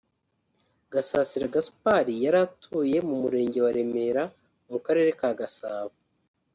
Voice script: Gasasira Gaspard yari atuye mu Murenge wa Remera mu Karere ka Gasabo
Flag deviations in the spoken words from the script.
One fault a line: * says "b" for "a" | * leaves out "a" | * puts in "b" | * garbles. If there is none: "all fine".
all fine